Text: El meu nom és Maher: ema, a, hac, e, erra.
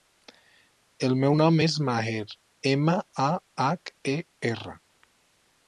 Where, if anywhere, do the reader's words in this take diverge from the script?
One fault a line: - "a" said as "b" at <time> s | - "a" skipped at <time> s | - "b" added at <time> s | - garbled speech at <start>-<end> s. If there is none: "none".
none